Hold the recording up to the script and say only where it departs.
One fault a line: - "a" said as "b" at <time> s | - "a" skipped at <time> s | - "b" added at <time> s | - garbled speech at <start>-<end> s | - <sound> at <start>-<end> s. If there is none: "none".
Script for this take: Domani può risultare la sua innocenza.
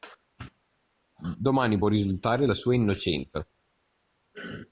none